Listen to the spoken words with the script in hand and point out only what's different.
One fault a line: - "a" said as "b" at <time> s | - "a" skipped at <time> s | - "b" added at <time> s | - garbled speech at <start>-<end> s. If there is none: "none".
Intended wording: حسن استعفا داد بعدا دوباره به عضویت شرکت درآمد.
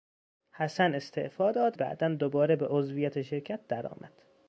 none